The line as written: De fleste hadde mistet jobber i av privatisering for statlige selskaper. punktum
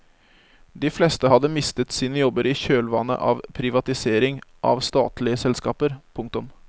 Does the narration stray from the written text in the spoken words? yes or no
yes